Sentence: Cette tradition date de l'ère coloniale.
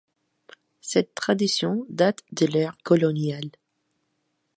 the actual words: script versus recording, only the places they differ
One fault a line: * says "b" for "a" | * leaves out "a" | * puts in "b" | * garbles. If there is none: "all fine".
all fine